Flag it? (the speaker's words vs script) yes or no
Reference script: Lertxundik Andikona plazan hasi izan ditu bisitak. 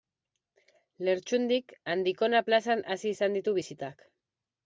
no